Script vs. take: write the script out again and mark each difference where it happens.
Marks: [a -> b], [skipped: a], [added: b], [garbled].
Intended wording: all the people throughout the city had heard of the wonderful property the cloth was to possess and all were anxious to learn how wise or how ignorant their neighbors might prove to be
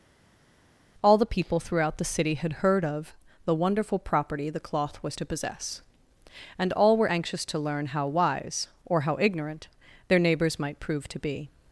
all the people throughout the city had heard of the wonderful property the cloth was to possess and all were anxious to learn how wise or how ignorant their neighbors might prove to be